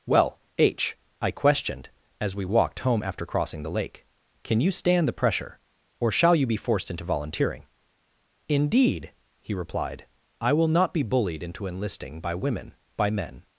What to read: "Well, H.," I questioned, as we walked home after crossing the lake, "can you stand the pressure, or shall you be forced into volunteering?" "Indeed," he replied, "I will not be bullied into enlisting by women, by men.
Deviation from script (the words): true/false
false